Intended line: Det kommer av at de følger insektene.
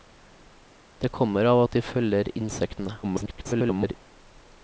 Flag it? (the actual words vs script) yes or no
yes